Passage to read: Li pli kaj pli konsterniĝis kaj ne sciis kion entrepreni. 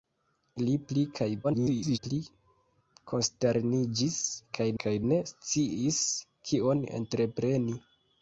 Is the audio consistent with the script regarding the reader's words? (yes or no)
no